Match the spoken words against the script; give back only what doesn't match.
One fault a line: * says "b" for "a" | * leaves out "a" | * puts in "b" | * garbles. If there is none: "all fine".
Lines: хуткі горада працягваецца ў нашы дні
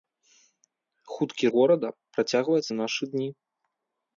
all fine